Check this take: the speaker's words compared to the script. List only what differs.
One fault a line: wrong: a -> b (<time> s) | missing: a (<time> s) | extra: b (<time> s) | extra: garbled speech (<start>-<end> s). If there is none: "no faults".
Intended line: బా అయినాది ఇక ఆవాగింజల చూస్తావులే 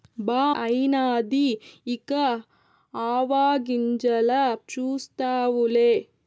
no faults